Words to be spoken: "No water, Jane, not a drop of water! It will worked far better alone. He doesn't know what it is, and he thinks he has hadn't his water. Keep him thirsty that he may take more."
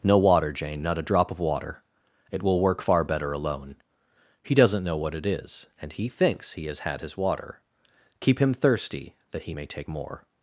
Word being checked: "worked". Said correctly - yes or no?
no